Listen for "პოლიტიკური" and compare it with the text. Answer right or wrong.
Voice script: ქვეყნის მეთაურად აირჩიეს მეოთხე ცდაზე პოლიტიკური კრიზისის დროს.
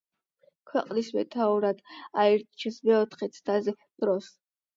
wrong